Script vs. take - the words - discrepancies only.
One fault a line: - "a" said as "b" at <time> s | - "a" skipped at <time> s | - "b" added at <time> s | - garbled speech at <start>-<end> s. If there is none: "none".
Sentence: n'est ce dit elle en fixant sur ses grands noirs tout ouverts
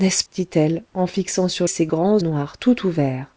none